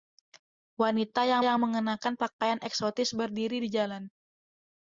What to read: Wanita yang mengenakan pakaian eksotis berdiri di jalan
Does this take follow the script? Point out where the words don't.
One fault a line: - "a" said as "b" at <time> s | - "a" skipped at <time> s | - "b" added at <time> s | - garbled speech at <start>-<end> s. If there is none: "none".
- "yang" added at 1.4 s